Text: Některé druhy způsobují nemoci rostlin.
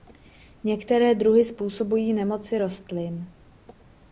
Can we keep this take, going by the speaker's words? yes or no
yes